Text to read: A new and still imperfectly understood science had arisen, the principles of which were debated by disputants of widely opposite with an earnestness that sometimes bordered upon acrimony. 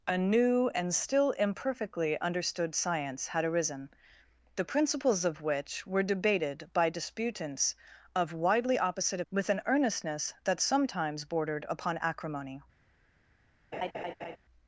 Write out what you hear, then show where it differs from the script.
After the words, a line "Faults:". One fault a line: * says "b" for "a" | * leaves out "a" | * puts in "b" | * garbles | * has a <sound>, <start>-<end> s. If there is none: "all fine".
A new and still imperfectly understood science had arisen, the principles of which were debated by disputants of widely opposite with an earnestness that sometimes bordered upon acrimony.
Faults:
* has a laugh, 13.7-14.4 s